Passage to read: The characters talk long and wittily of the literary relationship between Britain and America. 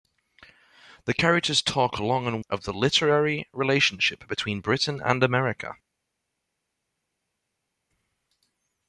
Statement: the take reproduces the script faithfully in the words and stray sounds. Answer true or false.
false